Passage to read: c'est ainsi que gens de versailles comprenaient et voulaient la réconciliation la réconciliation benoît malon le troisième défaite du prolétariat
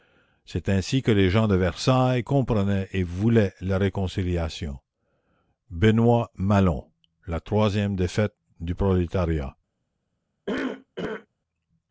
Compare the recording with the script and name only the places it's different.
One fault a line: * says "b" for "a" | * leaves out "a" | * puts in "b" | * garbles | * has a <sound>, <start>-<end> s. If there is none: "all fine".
* puts in "les"
* leaves out "la réconciliation"
* says "la" for "le"
* has a cough, 10.5-11.3 s